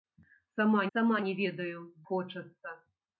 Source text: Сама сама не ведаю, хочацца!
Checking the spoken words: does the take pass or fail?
pass